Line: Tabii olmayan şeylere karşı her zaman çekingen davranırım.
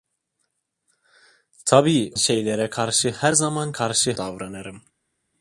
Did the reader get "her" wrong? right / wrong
right